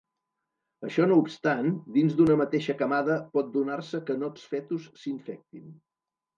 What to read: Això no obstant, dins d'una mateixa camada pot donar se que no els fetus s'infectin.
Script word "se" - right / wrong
right